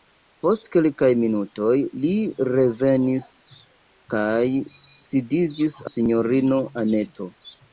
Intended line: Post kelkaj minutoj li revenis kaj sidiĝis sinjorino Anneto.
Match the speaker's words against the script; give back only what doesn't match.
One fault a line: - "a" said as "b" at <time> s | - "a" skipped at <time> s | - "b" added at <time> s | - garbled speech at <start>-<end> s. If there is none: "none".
none